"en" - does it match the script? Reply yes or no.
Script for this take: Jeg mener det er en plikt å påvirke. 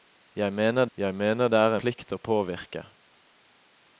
no